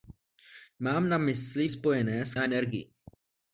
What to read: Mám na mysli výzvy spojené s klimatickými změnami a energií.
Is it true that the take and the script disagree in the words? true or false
true